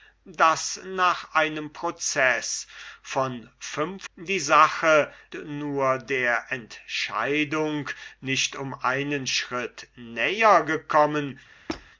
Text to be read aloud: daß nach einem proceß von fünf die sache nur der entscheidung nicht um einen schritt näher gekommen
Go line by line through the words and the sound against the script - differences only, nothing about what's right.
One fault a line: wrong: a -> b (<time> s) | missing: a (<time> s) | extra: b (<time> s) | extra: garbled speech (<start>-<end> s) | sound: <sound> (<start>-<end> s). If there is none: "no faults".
sound: squeak (11.7-11.9 s)